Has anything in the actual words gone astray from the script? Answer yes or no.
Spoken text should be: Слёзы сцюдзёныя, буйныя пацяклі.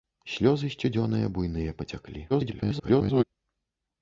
yes